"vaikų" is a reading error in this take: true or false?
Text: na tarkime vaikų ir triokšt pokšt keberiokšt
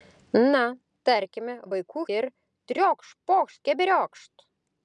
false